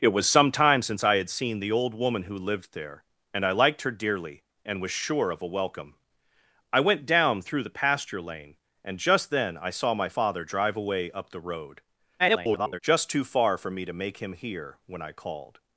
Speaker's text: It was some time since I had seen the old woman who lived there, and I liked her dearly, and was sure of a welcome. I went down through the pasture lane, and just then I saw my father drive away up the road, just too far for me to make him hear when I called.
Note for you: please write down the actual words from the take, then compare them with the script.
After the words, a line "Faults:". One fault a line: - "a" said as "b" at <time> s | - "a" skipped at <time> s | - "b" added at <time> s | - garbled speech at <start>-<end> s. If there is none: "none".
It was some time since I had seen the old woman who lived there, and I liked her dearly, and was sure of a welcome. I went down through the pasture lane, and just then I saw my father drive away up the road, [garbled] just too far for me to make him hear when I called.
Faults:
- garbled speech at 12.2-12.8 s